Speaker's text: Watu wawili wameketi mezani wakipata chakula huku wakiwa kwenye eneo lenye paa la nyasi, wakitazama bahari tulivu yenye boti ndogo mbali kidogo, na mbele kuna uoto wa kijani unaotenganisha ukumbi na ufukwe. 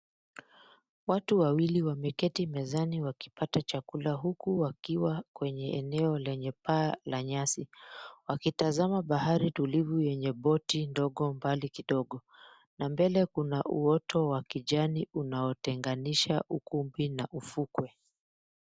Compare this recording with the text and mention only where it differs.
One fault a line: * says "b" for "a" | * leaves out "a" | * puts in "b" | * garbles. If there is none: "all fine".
all fine